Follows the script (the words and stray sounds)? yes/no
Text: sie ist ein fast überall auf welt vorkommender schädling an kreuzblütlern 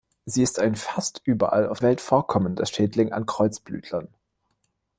yes